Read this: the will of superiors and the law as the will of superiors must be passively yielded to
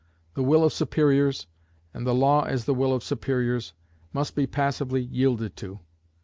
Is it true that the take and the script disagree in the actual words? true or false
false